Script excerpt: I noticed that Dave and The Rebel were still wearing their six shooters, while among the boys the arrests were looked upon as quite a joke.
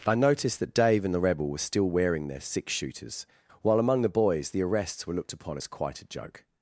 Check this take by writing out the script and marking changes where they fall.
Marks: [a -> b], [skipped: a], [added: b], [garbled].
I noticed that Dave and The Rebel were still wearing their six shooters, while among the boys the arrests were looked upon as quite a joke.